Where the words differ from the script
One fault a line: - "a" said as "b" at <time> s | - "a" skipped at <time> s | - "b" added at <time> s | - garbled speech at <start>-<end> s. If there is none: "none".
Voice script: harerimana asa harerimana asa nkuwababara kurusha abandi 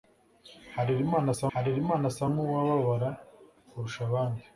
none